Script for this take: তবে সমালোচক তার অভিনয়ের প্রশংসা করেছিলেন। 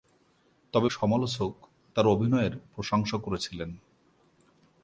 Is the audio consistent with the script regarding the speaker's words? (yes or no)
yes